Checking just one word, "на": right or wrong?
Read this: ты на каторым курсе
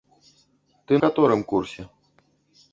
wrong